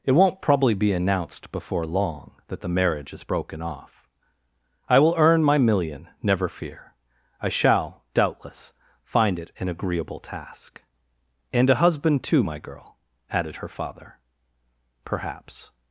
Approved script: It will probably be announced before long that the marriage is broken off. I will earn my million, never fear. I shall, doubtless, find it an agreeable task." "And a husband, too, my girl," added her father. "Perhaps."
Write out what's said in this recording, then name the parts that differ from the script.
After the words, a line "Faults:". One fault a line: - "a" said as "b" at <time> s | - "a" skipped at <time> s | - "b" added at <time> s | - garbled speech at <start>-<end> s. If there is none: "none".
It won't probably be announced before long that the marriage is broken off. I will earn my million, never fear. I shall, doubtless, find it an agreeable task." "And a husband, too, my girl," added her father. "Perhaps."
Faults:
- "will" said as "won't" at 0.1 s